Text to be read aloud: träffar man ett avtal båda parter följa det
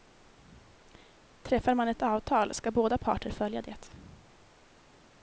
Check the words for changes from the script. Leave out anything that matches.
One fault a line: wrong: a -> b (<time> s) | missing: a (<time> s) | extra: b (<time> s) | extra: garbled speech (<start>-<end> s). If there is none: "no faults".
extra: ska (2.5 s)